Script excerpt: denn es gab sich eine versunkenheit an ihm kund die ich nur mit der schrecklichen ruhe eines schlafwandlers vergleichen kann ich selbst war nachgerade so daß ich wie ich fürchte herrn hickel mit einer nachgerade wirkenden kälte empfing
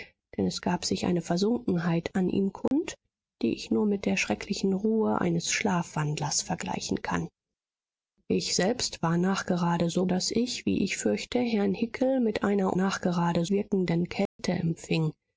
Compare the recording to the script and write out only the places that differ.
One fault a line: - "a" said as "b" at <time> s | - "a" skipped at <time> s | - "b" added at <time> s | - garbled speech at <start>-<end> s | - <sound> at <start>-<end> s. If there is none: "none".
- dropout at 2.7-2.7 s
- dropout at 14.3-14.4 s